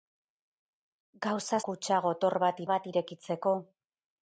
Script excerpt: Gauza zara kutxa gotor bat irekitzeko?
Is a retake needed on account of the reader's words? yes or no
yes